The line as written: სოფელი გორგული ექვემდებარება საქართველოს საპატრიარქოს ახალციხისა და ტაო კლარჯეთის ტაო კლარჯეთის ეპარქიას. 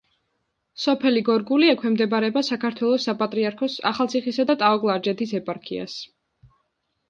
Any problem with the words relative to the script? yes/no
yes